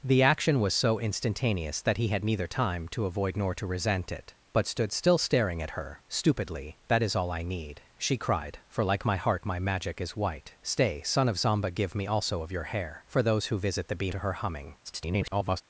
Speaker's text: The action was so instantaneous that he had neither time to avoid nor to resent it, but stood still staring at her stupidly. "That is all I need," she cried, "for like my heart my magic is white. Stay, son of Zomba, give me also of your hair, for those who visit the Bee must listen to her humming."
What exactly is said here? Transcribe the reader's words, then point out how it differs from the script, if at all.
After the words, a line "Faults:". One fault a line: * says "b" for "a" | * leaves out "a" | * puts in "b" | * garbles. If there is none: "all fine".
The action was so instantaneous that he had neither time to avoid nor to resent it, but stood still staring at her stupidly. "That is all I need," she cried, "for like my heart my magic is white. Stay, son of Zomba, give me also of your hair, for those who visit the Bee to her humming." [garbled]
Faults:
* leaves out "must listen"
* garbles